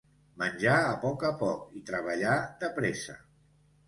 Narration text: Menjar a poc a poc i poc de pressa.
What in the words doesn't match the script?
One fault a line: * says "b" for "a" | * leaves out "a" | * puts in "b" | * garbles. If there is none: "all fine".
* says "treballar" for "poc"